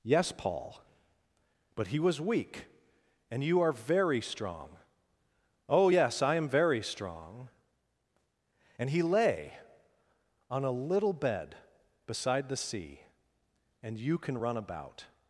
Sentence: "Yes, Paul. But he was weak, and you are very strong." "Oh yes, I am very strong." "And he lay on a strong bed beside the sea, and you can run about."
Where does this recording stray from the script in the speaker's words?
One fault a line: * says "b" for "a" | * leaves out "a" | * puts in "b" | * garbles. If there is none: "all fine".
* says "little" for "strong"